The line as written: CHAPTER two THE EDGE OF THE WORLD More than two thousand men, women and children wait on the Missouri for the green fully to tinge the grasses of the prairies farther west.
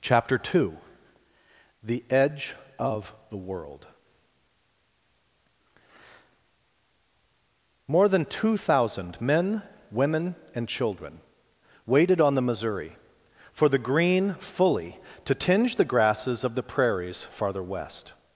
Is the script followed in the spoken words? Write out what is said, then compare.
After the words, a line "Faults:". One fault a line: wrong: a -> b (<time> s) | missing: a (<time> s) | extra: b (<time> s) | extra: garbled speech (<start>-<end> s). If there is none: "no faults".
CHAPTER two THE EDGE OF THE WORLD More than two thousand men, women and children waited on the Missouri for the green fully to tinge the grasses of the prairies farther west.
Faults:
wrong: wait -> waited (11.8 s)